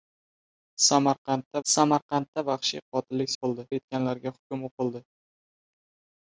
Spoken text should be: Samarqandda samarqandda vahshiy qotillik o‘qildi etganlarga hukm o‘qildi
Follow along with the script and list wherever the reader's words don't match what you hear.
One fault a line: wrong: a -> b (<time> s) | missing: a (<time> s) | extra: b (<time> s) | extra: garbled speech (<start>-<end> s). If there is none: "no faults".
no faults